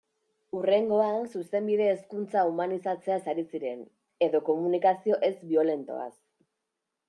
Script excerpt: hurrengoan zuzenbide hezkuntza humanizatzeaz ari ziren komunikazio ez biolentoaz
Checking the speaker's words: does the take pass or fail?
fail